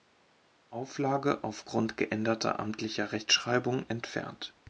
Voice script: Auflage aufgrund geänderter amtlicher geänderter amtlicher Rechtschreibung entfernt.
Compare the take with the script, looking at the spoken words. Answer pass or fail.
fail